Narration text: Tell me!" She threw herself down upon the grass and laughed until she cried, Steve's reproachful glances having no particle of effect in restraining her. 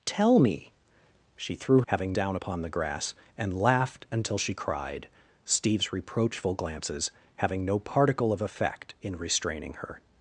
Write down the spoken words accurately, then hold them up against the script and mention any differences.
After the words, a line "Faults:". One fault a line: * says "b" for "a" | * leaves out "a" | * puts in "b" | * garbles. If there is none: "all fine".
Tell me!" She threw having down upon the grass and laughed until she cried, Steve's reproachful glances having no particle of effect in restraining her.
Faults:
* says "having" for "herself"